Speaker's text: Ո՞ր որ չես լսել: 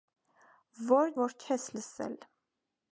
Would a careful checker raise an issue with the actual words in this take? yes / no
no